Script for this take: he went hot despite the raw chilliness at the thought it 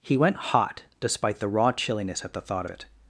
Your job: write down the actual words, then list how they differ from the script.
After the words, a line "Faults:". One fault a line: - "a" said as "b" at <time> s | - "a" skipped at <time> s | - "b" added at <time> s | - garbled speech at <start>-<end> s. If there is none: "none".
he went hot despite the raw chilliness at the thought it
Faults:
none